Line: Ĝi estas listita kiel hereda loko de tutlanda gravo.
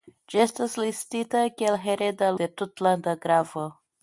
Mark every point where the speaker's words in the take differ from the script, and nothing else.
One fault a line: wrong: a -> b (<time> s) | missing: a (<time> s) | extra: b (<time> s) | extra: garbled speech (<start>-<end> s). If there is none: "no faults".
missing: loko (2.3 s)